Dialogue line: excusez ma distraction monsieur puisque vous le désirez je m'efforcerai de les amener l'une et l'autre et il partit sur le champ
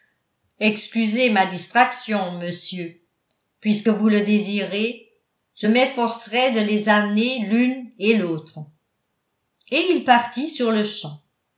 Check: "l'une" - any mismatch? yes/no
no